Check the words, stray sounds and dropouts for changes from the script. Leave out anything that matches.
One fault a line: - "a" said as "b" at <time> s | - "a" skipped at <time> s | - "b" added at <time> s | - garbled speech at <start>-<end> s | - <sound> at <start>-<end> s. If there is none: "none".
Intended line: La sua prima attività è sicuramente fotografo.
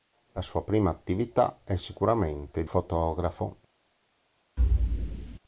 - thud at 4.6-5.4 s